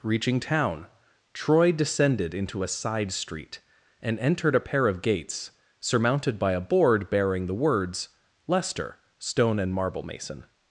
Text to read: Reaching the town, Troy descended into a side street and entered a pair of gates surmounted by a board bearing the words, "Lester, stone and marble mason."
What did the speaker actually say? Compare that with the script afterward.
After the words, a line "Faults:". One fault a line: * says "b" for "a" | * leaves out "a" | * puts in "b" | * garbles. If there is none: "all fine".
Reaching town, Troy descended into a side street and entered a pair of gates surmounted by a board bearing the words, "Lester, stone and marble mason."
Faults:
* leaves out "the"